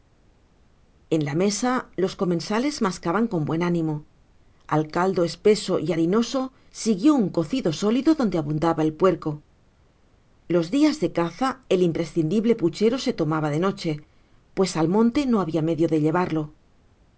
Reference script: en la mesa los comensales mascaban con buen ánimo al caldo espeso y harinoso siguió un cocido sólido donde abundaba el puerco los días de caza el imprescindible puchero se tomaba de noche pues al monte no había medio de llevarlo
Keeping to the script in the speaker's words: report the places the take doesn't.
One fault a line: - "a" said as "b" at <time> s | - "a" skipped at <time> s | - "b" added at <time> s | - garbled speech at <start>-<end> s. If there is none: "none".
none